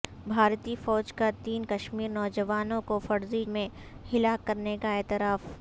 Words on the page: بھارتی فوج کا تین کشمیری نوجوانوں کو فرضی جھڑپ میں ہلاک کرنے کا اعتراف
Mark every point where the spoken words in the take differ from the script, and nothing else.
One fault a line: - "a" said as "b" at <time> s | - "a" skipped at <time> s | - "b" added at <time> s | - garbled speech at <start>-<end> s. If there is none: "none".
- "جھڑپ" skipped at 3.4 s